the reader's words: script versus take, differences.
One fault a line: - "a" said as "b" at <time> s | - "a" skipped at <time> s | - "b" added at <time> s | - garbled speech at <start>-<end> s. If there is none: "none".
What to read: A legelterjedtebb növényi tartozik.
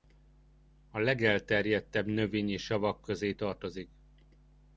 - "savak közé" added at 2.6 s